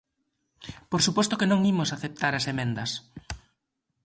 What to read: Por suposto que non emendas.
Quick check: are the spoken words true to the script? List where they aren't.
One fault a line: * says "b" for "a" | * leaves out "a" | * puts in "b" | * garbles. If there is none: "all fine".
* puts in "imos aceptar as"